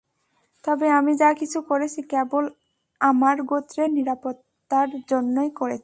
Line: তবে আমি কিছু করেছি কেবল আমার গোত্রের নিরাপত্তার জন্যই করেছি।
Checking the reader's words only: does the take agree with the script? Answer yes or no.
no